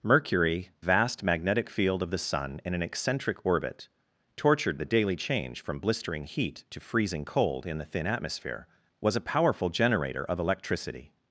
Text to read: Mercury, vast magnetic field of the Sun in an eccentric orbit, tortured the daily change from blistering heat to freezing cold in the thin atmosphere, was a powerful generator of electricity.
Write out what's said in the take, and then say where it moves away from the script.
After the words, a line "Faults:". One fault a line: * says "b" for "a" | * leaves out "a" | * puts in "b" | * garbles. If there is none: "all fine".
Mercury, vast magnetic field of the Sun in an eccentric orbit, tortured the daily change from blistering heat to freezing cold in the thin atmosphere, was a powerful generator of electricity.
Faults:
all fine